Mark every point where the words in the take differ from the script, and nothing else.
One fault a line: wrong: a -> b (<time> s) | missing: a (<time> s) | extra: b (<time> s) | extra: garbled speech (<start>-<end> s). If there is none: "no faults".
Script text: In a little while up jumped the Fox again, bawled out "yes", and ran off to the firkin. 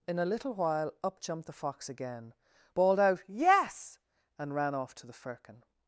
no faults